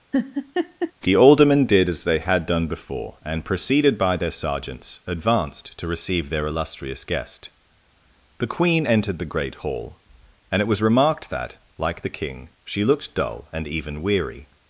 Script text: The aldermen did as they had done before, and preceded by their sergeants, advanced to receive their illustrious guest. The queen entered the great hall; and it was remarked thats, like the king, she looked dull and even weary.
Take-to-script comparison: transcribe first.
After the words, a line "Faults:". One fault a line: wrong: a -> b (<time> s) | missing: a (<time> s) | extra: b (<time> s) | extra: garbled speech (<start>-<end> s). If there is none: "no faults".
The aldermen did as they had done before, and preceded by their sergeants, advanced to receive their illustrious guest. The queen entered the great hall; and it was remarked that, like the king, she looked dull and even weary.
Faults:
wrong: thats -> that (11.3 s)